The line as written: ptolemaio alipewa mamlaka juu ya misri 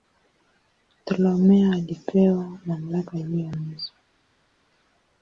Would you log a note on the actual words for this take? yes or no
no